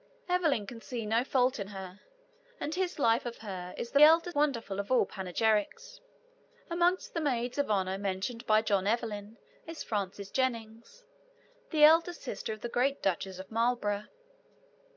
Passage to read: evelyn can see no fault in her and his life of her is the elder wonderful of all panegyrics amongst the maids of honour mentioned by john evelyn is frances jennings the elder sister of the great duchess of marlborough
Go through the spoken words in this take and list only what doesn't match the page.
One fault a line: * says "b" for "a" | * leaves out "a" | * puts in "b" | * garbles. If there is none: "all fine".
all fine